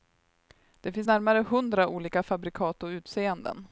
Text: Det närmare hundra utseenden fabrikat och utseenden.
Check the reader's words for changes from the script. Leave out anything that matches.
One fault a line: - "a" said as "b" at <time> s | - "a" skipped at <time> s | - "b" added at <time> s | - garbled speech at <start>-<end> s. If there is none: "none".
- "finns" added at 0.9 s
- "utseenden" said as "olika" at 1.9 s